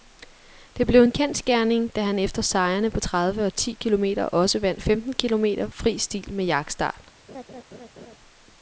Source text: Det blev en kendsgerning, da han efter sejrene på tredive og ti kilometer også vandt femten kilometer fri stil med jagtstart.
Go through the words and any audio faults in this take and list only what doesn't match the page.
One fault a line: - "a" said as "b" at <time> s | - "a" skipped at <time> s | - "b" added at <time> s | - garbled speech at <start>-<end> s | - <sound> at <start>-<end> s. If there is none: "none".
- laugh at 7.3-8.2 s